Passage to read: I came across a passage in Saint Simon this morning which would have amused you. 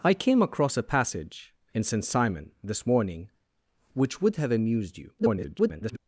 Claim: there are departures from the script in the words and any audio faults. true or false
true